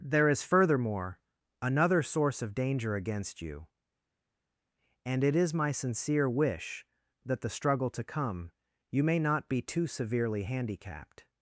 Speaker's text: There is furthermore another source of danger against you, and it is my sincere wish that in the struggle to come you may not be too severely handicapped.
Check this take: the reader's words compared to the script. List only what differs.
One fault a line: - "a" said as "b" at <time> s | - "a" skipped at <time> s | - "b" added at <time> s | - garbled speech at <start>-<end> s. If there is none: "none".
- "in" skipped at 7.4 s